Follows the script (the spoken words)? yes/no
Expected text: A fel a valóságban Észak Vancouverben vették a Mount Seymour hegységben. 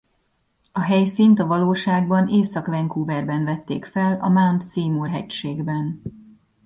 no